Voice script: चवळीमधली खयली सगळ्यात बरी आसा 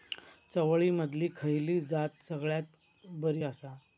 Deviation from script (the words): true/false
true